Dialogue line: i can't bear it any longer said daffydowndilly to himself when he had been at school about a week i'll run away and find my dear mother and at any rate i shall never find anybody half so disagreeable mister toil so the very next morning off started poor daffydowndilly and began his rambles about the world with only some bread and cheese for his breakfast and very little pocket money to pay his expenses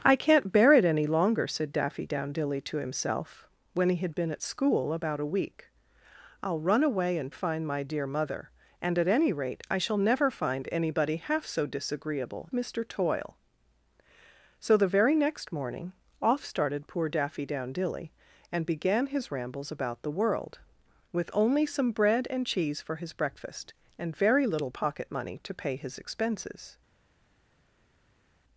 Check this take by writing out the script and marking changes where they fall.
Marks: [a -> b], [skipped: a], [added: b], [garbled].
i can't bear it any longer said daffydowndilly to himself when he had been at school about a week i'll run away and find my dear mother and at any rate i shall never find anybody half so disagreeable mister toil so the very next morning off started poor daffydowndilly and began his rambles about the world with only some bread and cheese for his breakfast and very little pocket money to pay his expenses